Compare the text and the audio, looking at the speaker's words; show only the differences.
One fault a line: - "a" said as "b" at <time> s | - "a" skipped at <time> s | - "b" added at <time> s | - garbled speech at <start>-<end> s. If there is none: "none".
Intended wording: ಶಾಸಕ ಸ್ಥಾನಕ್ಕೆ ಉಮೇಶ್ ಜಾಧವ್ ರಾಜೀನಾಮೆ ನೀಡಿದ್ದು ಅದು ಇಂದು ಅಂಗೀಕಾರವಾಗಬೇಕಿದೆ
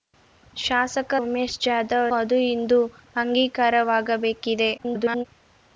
- "ಸ್ಥಾನಕ್ಕೆ" skipped at 1.1 s
- "ರಾಜೀನಾಮೆ ನೀಡಿದ್ದು" skipped at 2.1 s
- garbled speech at 4.8-5.3 s